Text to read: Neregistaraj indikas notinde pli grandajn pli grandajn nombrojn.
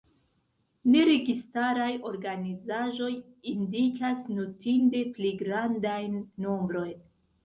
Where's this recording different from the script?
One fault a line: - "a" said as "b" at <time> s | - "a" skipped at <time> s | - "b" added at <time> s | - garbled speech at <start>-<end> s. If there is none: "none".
- "organizaĵoj" added at 2.1 s
- "pli grandajn" skipped at 6.2 s